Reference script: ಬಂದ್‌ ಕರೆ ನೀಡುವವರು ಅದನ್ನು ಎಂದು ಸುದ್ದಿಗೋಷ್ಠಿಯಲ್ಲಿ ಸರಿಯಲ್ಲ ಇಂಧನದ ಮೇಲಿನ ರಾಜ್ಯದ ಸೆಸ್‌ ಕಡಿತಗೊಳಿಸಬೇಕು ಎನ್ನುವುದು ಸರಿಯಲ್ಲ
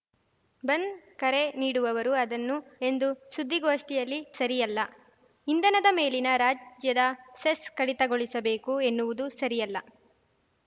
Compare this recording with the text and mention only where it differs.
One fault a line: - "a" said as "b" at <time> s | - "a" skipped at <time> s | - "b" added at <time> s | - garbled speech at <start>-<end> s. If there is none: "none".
none